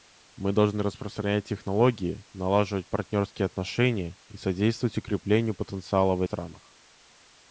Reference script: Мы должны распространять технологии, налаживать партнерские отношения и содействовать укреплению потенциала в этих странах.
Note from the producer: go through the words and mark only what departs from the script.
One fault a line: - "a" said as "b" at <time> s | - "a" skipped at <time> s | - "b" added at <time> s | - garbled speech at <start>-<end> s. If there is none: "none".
- "этих" skipped at 6.2 s